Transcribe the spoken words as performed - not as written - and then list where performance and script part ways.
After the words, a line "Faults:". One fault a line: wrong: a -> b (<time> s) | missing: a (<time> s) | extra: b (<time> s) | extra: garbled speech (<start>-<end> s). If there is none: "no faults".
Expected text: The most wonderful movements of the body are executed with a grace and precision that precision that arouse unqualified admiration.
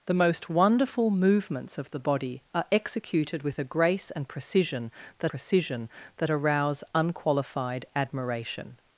The most wonderful movements of the body are executed with a grace and precision that precision that arouse unqualified admiration.
Faults:
no faults